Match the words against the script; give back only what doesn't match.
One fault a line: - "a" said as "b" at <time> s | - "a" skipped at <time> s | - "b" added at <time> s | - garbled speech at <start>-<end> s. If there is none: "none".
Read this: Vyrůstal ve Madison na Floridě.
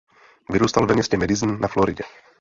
- "městě" added at 0.9 s